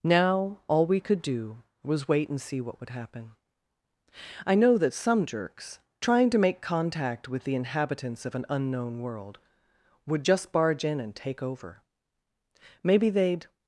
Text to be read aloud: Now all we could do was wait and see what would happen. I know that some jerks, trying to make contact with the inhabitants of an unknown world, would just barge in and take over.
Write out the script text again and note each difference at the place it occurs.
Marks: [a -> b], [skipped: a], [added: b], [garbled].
Now all we could do was wait and see what would happen. I know that some jerks, trying to make contact with the inhabitants of an unknown world, would just barge in and take over. [added: Maybe they'd]